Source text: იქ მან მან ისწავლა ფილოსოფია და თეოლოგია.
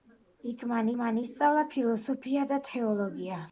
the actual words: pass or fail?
pass